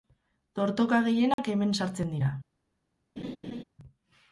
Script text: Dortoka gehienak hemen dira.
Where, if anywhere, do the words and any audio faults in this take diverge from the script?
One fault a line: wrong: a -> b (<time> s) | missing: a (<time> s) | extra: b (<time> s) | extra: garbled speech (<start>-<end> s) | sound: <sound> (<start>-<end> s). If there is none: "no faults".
sound: dropout (1.3-1.4 s)
extra: sartzen (1.8 s)
sound: laugh (3.2-3.6 s)